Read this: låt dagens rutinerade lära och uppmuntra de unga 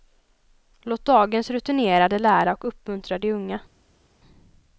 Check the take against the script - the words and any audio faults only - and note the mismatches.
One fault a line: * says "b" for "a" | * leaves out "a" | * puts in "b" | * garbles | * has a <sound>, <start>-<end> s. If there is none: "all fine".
all fine